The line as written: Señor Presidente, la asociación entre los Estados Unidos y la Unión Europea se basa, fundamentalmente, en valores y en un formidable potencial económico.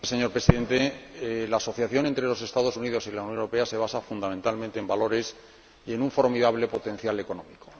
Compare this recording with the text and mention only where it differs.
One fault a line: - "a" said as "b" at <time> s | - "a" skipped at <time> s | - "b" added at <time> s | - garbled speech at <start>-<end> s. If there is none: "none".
none